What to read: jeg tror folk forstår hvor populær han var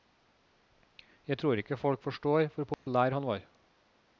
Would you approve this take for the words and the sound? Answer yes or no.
no